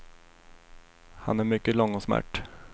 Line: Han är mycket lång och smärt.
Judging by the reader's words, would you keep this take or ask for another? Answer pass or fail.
pass